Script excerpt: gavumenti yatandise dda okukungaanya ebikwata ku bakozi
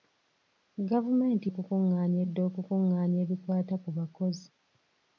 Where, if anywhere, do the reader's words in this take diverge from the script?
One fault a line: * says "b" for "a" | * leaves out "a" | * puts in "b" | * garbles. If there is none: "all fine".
* says "okukungaanya" for "yatandise"